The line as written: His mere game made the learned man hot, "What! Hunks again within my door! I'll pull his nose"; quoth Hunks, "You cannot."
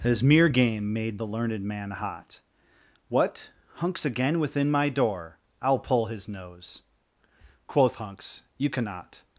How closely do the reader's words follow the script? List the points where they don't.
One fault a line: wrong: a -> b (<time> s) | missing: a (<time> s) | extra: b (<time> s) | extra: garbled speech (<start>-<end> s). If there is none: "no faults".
no faults